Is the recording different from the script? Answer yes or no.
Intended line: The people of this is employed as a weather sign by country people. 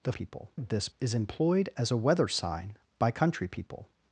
no